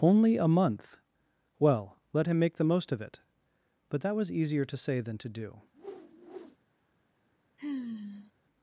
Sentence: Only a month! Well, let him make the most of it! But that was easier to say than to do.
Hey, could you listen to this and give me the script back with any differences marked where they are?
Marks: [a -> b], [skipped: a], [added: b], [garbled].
Only a month! Well, let him make the most of it! But that was easier to say than to do.